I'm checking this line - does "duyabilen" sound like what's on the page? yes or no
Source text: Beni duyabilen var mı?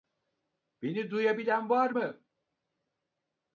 yes